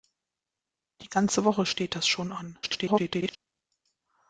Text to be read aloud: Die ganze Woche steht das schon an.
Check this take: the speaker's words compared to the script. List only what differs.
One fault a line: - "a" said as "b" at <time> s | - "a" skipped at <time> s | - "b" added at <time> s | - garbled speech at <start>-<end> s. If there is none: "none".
- garbled speech at 2.6-3.4 s